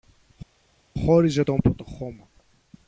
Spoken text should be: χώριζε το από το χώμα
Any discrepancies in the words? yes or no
no